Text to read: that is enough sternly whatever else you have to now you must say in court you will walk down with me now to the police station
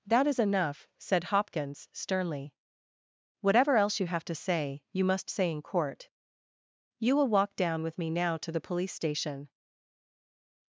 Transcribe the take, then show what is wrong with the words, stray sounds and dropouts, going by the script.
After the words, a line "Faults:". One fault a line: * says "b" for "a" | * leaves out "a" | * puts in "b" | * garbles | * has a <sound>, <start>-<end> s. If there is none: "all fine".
that is enough said hopkins sternly whatever else you have to say you must say in court you will walk down with me now to the police station
Faults:
* puts in "said hopkins"
* says "say" for "now"